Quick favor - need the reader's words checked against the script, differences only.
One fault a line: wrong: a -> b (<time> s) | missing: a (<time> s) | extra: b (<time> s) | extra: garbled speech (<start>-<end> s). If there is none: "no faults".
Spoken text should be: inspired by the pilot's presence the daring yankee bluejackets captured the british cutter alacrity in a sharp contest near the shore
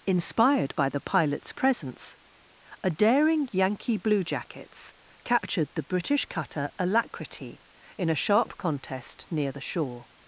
wrong: the -> a (2.8 s)